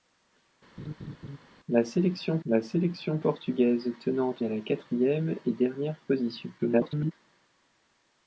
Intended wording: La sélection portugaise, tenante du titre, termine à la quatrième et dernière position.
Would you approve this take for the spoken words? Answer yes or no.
no